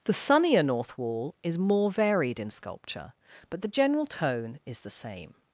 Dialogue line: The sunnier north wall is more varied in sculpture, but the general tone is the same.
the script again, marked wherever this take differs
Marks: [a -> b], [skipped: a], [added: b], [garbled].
The sunnier north wall is more varied in sculpture, but the general tone is the same.